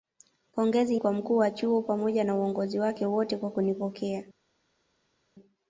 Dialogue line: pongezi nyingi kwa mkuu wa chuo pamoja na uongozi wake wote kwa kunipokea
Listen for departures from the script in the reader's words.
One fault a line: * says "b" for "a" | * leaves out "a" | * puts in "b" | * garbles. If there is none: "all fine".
* leaves out "nyingi"